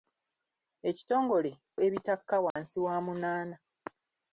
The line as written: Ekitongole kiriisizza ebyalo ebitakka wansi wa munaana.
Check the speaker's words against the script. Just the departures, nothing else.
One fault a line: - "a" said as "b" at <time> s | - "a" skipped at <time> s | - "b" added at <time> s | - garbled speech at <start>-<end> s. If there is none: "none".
- "kiriisizza ebyalo" skipped at 1.5 s